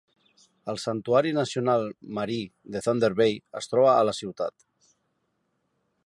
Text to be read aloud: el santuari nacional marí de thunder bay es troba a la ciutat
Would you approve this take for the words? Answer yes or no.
yes